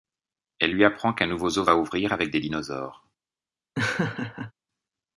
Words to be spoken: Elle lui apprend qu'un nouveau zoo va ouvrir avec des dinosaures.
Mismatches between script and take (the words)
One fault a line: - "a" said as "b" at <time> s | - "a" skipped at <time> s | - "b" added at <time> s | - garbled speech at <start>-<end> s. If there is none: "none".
none